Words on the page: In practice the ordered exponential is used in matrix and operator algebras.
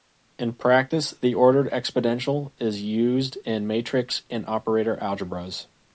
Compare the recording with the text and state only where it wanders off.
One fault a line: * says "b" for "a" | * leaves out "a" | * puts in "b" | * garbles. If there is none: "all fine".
all fine